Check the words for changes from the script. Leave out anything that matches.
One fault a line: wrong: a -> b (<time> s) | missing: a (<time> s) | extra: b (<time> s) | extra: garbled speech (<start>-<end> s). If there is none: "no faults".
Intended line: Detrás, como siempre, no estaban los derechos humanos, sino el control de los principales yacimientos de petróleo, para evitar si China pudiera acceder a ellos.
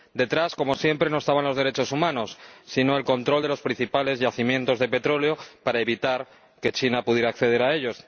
wrong: si -> que (6.6 s)